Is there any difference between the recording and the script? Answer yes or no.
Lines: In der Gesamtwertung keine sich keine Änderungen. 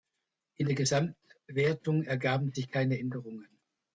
yes